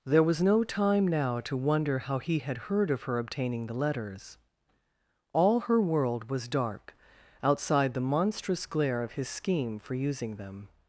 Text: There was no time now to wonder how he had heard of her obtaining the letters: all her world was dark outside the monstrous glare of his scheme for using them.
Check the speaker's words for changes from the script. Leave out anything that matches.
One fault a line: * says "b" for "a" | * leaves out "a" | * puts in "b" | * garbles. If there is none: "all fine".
all fine